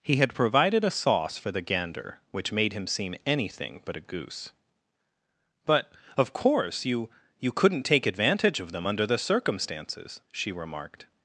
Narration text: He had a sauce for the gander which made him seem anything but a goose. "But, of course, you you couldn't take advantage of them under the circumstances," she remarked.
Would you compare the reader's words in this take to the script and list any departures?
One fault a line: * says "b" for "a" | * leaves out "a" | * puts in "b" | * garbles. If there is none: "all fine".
* puts in "provided"